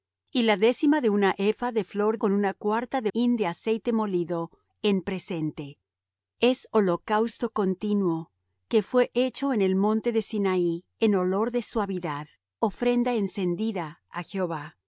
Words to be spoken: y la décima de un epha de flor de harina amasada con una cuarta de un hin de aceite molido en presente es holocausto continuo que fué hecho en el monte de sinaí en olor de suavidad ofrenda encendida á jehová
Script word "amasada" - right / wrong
wrong